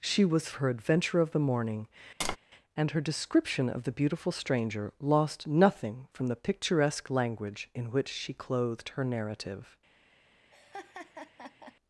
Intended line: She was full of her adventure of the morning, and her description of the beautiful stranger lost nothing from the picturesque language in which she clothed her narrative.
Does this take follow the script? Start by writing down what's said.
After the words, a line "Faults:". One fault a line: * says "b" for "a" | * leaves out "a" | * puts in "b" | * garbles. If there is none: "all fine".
She was her adventure of the morning, and her description of the beautiful stranger lost nothing from the picturesque language in which she clothed her narrative.
Faults:
* leaves out "full of"